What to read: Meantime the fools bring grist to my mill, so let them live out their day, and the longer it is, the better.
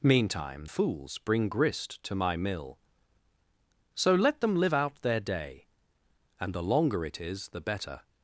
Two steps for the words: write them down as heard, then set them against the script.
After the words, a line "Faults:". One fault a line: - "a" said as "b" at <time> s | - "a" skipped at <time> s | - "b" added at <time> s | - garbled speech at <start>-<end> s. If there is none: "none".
Meantime fools bring grist to my mill, so let them live out their day, and the longer it is, the better.
Faults:
- "the" skipped at 0.7 s